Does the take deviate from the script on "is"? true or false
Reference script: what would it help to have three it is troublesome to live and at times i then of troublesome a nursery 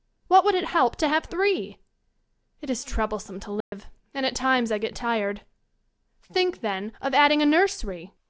false